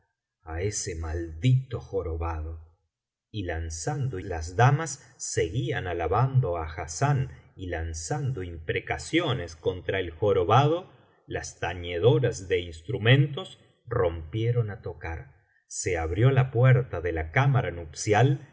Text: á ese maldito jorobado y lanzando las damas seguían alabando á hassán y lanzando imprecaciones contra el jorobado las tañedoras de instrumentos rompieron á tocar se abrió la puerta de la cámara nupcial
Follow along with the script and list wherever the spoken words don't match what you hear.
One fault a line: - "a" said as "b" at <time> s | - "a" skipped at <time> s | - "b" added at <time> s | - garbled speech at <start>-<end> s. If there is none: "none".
none